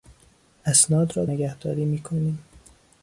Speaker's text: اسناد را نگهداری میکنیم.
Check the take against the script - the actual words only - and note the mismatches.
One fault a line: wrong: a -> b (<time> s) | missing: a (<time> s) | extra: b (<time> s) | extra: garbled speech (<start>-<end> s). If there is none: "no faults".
no faults